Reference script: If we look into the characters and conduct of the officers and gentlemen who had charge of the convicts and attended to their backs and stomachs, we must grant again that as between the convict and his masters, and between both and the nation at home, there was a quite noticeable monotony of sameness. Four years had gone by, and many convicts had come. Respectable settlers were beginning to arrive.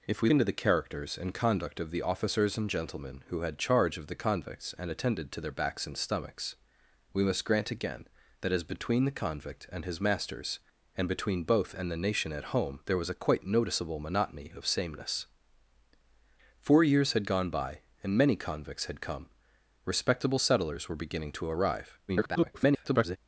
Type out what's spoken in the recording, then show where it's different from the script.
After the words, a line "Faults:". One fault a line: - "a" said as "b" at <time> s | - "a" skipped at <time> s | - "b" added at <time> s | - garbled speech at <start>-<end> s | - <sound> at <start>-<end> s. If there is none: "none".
If we into the characters and conduct of the officers and gentlemen who had charge of the convicts and attended to their backs and stomachs, we must grant again that as between the convict and his masters, and between both and the nation at home, there was a quite noticeable monotony of sameness. Four years had gone by, and many convicts had come. Respectable settlers were beginning to arrive. [garbled]
Faults:
- "look" skipped at 0.3 s
- garbled speech at 22.1-23.2 s